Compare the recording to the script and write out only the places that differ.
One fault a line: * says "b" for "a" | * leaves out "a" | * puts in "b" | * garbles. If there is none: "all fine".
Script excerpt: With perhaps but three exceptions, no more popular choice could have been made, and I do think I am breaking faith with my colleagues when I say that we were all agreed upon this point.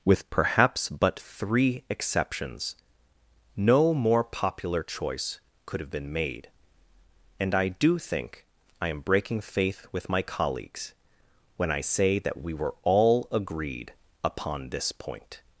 all fine